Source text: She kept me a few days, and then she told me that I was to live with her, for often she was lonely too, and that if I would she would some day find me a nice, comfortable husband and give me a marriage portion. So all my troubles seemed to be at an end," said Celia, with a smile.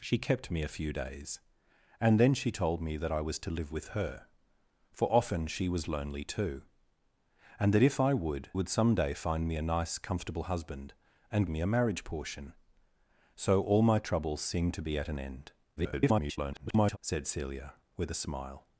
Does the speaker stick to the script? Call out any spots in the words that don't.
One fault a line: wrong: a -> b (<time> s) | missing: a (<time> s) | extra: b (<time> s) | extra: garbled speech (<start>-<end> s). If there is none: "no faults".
missing: she (8.5 s)
missing: give (11.5 s)
extra: garbled speech (15.8-17.0 s)